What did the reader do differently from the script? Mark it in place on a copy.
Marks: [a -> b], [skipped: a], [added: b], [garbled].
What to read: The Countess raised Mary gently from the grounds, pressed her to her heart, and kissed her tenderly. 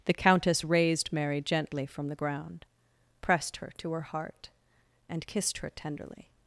The Countess raised Mary gently from the [grounds, -> ground] pressed her to her heart, and kissed her tenderly.